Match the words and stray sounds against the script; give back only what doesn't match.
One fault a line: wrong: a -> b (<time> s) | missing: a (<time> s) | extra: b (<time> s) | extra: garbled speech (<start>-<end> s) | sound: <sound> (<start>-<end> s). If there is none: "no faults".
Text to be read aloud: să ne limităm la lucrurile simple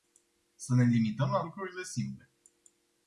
no faults